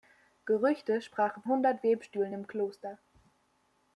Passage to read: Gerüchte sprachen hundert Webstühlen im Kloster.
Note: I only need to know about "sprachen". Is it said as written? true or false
true